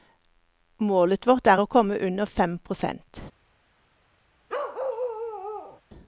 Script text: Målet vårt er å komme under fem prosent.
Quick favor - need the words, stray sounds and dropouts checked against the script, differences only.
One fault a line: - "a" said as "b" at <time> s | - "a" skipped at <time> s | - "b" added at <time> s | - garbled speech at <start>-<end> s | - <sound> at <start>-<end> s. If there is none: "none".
- bark at 4.5-5.8 s